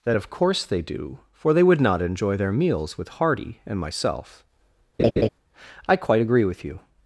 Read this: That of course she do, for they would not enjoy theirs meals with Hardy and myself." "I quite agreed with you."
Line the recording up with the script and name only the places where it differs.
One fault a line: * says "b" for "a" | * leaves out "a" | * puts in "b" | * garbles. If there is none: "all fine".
* says "they" for "she"
* says "their" for "theirs"
* says "agree" for "agreed"